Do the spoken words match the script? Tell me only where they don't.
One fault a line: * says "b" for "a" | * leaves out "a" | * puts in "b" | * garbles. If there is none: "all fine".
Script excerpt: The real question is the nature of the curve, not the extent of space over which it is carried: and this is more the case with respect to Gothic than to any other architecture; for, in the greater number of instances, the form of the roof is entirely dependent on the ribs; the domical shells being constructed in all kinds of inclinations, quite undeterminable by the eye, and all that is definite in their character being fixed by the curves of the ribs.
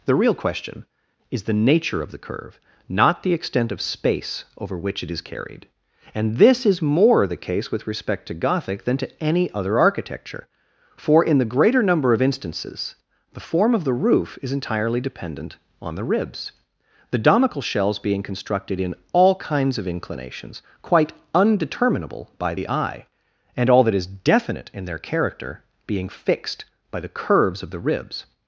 all fine